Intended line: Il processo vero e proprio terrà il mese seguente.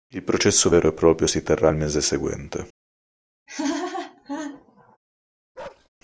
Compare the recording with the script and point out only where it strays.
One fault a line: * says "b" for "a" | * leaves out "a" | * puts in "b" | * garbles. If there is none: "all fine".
* puts in "si"